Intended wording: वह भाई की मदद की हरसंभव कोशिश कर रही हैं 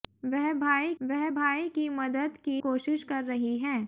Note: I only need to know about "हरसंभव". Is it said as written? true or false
false